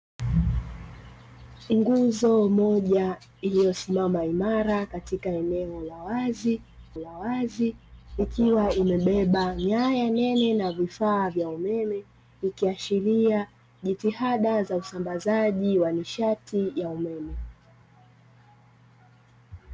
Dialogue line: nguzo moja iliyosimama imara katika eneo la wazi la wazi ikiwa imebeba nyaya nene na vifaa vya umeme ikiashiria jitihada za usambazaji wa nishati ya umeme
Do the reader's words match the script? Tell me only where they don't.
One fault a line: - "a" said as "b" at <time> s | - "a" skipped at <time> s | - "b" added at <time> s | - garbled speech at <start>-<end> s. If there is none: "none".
none